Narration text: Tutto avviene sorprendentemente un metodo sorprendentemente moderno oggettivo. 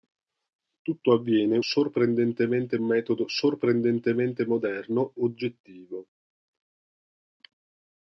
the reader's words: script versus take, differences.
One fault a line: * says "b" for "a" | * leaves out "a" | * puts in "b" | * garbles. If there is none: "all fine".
all fine